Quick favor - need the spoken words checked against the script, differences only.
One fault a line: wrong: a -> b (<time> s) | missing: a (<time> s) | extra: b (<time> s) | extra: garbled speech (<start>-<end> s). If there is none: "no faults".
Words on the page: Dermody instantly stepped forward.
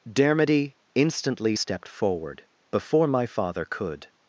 extra: Before my father could (2.7 s)